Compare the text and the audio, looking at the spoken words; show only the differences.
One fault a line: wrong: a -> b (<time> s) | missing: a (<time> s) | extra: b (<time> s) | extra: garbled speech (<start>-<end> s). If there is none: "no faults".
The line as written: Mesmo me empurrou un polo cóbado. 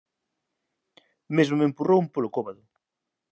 no faults